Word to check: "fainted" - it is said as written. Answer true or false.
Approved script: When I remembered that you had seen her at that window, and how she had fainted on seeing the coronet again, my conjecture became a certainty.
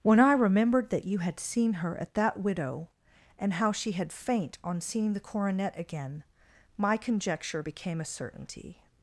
false